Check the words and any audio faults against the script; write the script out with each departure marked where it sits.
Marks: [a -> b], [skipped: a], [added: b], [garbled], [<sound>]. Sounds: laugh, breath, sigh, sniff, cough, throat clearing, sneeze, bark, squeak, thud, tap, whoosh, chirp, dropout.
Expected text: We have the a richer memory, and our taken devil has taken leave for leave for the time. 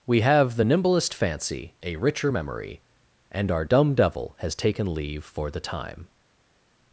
We have the [added: nimblest fancy] a richer memory, and our [taken -> dumb] devil has taken leave for [skipped: leave for] the time.